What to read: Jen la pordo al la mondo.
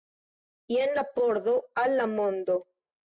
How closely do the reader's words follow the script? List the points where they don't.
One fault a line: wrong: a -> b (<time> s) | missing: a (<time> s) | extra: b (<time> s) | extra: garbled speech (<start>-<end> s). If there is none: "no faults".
no faults